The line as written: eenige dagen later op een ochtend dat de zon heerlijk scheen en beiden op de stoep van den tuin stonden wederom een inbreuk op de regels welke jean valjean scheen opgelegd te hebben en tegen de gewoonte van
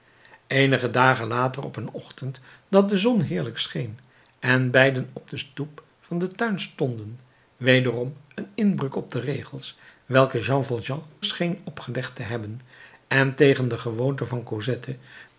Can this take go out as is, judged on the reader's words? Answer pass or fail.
pass